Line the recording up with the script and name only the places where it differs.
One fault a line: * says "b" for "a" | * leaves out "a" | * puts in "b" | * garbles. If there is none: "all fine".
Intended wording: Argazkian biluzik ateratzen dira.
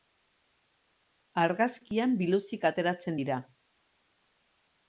all fine